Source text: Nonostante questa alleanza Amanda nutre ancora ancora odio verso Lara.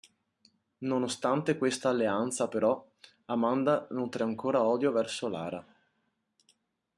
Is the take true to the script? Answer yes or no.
no